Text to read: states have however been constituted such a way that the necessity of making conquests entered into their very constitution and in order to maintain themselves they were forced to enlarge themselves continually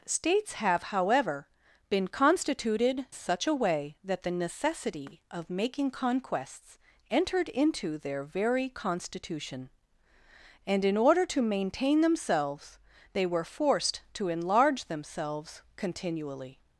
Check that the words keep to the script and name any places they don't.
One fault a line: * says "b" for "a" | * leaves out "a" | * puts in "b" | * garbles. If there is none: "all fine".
all fine